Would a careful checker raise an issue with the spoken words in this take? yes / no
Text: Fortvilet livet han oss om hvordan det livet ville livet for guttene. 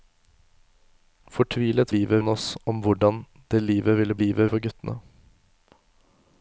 no